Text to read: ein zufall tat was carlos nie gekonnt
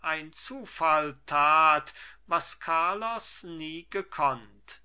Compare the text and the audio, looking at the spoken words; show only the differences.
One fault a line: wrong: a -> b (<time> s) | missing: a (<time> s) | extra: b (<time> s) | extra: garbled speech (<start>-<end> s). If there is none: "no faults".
no faults